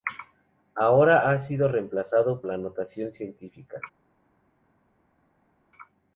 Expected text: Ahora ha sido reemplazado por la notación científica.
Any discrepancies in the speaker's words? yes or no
yes